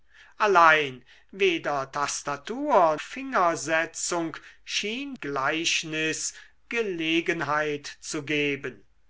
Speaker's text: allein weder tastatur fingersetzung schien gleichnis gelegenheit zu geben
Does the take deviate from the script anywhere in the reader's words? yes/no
no